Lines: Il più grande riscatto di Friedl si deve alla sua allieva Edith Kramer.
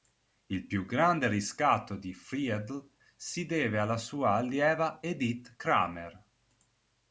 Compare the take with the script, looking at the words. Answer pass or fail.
pass